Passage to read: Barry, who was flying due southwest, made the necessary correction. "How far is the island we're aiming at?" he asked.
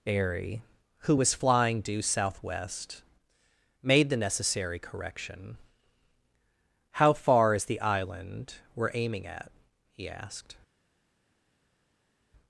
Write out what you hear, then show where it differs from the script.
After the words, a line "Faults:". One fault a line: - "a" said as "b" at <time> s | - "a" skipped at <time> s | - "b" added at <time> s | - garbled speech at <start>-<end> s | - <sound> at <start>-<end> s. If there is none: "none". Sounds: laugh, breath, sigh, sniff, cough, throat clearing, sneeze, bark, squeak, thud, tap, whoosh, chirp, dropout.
Airy, who was flying due southwest, made the necessary correction. "How far is the island we're aiming at?" he asked.
Faults:
- "Barry" said as "Airy" at 0.1 s